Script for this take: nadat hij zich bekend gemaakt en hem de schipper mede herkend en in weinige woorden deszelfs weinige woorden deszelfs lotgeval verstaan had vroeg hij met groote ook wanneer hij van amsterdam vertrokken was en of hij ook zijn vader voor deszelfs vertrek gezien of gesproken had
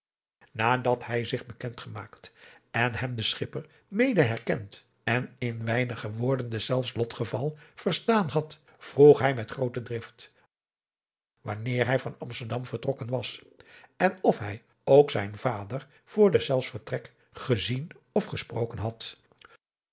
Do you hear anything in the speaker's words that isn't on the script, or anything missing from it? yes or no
yes